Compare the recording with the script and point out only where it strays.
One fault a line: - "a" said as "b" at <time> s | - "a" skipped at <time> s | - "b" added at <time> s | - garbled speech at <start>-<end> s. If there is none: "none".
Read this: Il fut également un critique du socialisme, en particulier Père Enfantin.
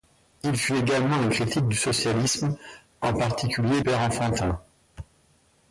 none